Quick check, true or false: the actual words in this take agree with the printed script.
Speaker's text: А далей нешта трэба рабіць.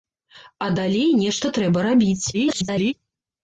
false